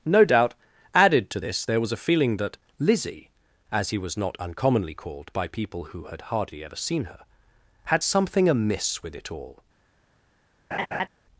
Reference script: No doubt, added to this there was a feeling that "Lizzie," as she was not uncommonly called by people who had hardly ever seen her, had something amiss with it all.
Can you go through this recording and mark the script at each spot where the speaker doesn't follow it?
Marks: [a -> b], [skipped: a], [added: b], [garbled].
No doubt, added to this there was a feeling that "Lizzie," as [she -> he] was not uncommonly called by people who had hardly ever seen her, had something amiss with it all.